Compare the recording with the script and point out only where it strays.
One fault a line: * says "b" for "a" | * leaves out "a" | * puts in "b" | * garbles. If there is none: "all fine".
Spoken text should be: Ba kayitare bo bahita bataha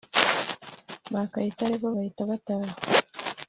all fine